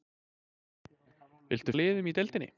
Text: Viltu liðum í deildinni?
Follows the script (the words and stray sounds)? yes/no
yes